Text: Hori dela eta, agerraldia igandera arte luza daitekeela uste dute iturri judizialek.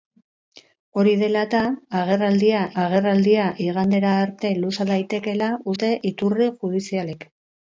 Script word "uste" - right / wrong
wrong